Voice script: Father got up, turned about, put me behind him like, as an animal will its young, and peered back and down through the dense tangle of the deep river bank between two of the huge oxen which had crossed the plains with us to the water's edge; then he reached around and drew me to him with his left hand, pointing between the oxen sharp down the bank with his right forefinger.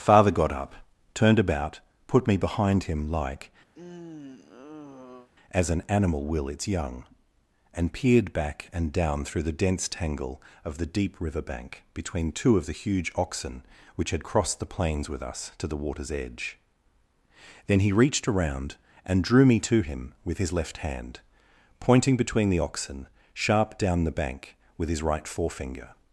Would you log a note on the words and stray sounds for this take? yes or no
yes